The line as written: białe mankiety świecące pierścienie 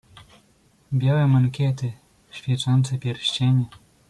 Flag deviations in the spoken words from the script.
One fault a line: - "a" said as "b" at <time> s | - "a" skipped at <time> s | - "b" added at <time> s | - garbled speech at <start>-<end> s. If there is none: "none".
none